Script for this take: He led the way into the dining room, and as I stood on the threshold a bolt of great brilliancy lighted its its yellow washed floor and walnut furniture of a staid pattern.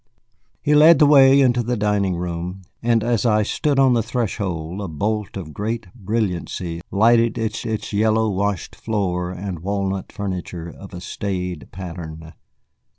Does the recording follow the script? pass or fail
pass